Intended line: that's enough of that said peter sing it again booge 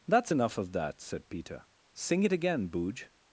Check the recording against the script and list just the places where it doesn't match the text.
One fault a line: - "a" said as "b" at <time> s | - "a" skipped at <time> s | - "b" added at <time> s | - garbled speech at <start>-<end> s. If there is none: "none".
none